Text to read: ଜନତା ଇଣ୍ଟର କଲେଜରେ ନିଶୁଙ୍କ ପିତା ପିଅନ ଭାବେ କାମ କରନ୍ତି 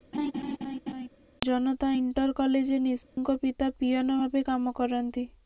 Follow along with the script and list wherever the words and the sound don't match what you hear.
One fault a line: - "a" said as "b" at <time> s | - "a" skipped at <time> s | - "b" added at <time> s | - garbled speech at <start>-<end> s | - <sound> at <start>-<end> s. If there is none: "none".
- laugh at 0.1-1.1 s
- dropout at 3.0-3.2 s